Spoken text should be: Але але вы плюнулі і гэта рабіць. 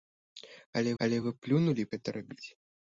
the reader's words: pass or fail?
pass